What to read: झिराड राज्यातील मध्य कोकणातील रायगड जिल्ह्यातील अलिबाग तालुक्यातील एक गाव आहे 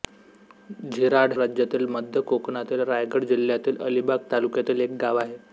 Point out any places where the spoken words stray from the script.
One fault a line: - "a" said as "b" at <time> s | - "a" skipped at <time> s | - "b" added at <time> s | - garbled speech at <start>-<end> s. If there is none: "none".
none